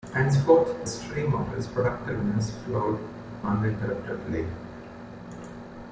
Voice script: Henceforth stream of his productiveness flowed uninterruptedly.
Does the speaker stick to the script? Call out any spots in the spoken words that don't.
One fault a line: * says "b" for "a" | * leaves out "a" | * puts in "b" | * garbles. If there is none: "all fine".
all fine